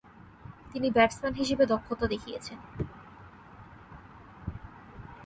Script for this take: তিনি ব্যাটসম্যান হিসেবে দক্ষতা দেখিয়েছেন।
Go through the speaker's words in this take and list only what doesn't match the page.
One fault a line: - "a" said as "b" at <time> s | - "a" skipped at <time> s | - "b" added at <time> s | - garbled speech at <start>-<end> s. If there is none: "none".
none